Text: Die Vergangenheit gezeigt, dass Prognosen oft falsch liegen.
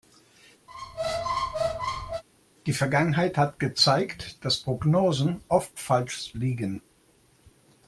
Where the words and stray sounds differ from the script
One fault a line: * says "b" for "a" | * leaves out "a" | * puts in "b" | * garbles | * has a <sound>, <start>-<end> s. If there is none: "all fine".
* has a squeak, 0.7-2.2 s
* puts in "hat"